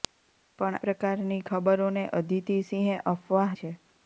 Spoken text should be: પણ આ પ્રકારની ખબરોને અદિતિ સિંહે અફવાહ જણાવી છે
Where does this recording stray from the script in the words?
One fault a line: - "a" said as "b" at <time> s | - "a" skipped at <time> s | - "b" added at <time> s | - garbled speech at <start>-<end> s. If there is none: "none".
- "આ" skipped at 0.8 s
- "જણાવી" skipped at 3.5 s